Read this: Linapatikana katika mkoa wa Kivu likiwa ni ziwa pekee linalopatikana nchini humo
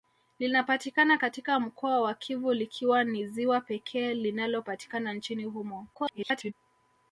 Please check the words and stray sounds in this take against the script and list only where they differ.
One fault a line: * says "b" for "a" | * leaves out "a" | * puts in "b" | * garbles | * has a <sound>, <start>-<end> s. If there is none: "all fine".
* garbles